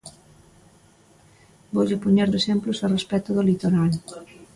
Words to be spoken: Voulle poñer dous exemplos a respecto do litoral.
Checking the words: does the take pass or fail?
fail